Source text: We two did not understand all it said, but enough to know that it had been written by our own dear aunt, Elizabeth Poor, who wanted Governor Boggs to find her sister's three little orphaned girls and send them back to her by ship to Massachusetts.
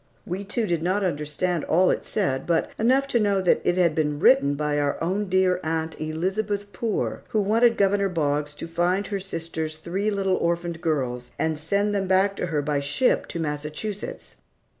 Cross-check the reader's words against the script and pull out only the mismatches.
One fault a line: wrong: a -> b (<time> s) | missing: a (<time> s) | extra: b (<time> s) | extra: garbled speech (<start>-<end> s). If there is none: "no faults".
no faults